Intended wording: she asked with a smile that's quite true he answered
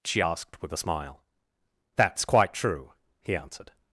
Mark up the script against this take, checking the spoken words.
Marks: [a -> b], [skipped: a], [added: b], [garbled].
she asked with a smile that's quite true he answered